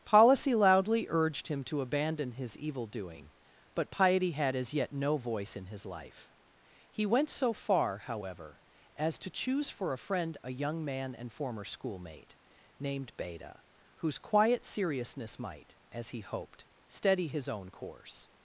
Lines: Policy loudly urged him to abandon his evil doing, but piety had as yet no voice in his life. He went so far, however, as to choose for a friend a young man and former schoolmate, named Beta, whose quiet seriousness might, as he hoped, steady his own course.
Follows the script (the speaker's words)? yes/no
yes